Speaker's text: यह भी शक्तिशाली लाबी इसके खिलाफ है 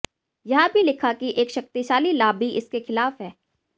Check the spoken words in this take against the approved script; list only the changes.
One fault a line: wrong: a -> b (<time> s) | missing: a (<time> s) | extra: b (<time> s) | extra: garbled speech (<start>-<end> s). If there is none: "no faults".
extra: लिखा कि एक (0.8 s)